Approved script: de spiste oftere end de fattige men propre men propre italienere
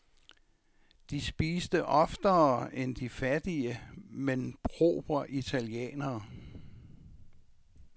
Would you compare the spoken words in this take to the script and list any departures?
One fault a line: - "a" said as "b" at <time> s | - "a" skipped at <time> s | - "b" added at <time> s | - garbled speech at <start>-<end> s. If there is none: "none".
- "men propre" skipped at 5.3 s